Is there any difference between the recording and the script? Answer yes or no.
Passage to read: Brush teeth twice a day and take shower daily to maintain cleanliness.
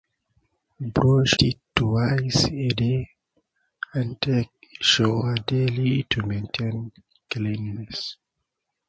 no